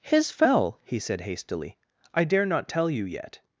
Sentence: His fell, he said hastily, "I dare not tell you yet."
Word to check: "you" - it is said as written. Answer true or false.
true